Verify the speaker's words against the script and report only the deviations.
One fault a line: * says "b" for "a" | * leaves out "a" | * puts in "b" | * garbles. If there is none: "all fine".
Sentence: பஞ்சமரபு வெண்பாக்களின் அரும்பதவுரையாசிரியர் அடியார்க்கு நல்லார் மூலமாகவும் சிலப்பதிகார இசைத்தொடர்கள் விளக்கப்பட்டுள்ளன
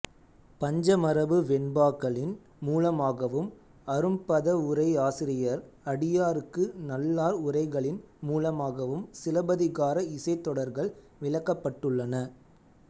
* puts in "மூலமாகவும்"
* puts in "உரைகளின்"